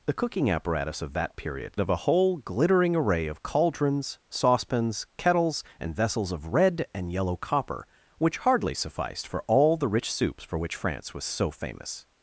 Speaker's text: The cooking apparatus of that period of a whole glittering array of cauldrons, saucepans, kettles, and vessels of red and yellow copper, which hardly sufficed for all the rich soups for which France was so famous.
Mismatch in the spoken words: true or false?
false